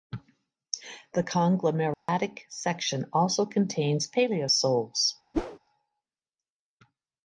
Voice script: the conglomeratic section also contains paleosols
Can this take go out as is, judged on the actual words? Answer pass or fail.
pass